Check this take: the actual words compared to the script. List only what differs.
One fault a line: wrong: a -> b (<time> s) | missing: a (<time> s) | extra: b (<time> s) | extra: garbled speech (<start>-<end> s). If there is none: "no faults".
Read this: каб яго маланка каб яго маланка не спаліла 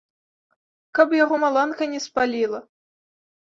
missing: каб яго маланка (1.8 s)